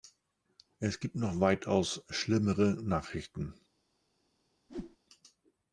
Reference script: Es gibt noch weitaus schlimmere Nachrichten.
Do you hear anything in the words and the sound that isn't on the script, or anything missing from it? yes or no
yes